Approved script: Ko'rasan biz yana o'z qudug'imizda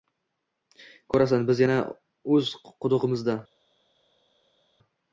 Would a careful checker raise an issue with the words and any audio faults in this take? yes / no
no